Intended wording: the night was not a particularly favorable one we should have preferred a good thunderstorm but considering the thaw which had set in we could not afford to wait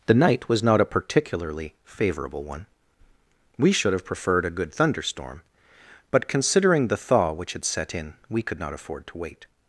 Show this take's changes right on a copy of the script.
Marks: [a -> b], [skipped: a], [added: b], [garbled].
the night was not a particularly favorable one we should have preferred a good thunderstorm but considering the thaw which had set in we could not afford to wait